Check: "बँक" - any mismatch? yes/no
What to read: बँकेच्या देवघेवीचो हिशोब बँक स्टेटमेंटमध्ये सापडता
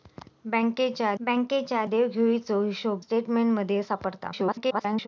yes